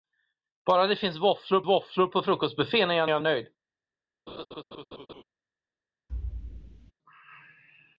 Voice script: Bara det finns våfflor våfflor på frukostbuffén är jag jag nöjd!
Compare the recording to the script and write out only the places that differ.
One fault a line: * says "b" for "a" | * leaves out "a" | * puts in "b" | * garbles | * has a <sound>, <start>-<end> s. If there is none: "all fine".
* has a laugh, 4.3-5.2 s
* has a thud, 6.1-6.9 s